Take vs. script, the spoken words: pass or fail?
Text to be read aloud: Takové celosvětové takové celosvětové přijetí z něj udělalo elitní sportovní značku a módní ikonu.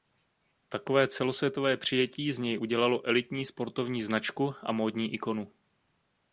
fail